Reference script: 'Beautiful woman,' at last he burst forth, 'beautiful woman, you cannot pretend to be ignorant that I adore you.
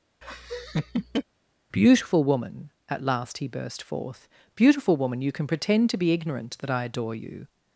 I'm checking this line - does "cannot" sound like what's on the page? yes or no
no